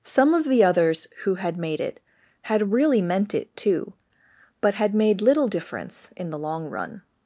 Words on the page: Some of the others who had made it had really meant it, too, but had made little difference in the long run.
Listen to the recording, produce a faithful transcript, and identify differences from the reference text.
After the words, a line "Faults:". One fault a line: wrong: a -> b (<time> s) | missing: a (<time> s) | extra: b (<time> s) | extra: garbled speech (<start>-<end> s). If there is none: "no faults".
Some of the others who had made it had really meant it, too, but had made little difference in the long run.
Faults:
no faults